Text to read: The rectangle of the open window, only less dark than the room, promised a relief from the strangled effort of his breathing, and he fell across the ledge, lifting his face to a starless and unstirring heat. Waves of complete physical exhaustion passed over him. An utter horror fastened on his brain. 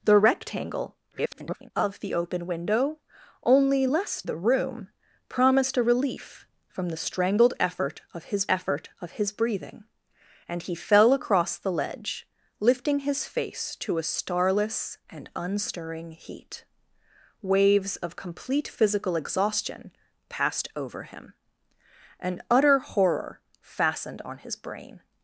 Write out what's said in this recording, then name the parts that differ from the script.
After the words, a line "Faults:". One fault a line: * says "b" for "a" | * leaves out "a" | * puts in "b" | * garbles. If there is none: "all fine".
The rectangle [garbled] of the open window, only less the room, promised a relief from the strangled effort of his effort of his breathing, and he fell across the ledge, lifting his face to a starless and unstirring heat. Waves of complete physical exhaustion passed over him. An utter horror fastened on his brain.
Faults:
* garbles
* leaves out "dark than"
* puts in "effort of his"